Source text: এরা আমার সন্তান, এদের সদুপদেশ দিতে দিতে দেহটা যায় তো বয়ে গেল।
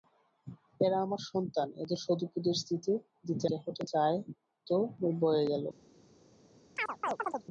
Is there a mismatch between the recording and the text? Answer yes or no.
no